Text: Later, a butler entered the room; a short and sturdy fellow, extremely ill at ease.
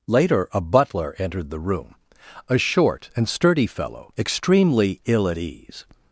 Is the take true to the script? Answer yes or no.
yes